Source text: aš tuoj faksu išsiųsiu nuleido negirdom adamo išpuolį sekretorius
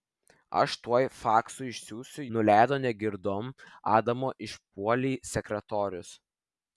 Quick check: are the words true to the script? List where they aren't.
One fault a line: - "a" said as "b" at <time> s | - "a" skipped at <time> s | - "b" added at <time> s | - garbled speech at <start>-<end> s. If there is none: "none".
none